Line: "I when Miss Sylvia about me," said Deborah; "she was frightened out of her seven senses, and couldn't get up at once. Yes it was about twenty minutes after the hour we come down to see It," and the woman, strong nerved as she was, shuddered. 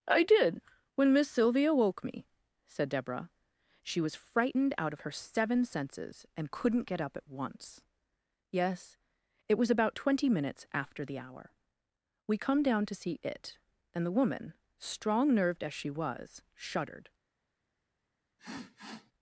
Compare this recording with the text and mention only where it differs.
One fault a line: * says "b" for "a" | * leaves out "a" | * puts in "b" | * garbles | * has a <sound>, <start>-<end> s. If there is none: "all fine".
* puts in "did"
* says "woke" for "about"
* has a sniff, 18.4-19.1 s